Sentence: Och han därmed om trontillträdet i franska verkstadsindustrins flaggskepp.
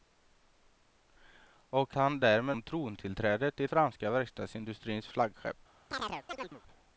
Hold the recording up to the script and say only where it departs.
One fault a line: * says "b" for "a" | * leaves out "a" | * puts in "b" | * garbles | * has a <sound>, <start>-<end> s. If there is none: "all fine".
* has a chirp, 5.9-6.6 s